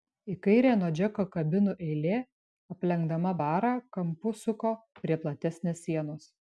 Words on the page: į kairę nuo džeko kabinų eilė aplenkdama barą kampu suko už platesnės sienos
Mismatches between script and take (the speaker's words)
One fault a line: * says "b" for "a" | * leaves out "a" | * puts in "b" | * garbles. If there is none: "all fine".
* says "prie" for "už"